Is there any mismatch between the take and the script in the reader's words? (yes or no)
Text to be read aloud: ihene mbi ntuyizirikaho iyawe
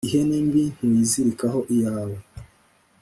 no